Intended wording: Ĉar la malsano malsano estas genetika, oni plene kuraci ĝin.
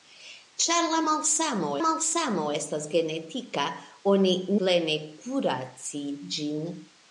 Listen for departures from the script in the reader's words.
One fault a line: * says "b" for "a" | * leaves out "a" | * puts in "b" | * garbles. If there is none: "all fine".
all fine